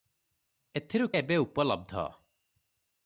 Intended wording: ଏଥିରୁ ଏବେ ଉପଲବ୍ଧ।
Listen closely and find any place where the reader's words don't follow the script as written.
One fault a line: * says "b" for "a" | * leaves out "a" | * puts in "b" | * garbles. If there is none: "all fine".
all fine